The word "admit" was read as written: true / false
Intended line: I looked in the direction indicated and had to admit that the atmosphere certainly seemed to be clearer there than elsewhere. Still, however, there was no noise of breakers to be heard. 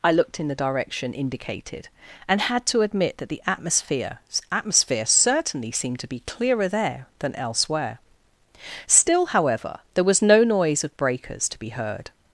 true